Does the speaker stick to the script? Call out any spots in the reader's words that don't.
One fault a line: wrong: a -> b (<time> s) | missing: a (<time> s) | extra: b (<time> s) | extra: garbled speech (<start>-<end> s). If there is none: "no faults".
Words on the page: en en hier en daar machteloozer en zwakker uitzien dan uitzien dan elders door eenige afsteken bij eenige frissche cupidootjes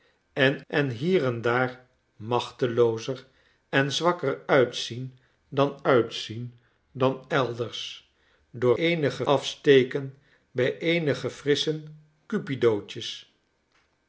no faults